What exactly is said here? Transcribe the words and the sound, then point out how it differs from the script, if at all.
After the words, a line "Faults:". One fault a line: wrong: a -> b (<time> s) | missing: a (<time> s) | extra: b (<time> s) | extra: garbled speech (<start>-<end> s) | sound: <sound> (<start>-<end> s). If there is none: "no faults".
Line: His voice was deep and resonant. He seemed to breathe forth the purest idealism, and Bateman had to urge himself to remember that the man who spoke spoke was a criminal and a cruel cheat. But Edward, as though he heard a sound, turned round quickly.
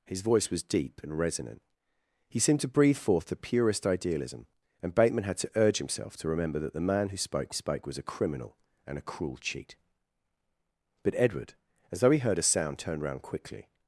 His voice was deep and resonant. He seemed to breathe forth the purest idealism, and Bateman had to urge himself to remember that the man who spoke spoke was a criminal and a cruel cheat. But Edward, as though he heard a sound, turned round quickly.
Faults:
no faults